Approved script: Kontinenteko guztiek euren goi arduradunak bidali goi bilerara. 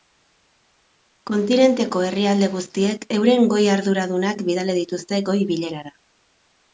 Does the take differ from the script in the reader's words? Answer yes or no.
yes